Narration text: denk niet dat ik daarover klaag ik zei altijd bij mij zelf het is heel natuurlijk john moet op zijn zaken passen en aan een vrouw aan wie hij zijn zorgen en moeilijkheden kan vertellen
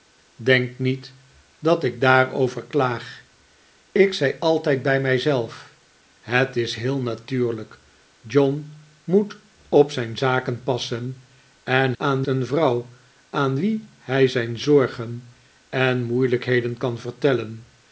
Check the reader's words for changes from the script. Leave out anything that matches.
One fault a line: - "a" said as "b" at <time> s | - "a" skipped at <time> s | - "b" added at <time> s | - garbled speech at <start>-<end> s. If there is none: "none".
none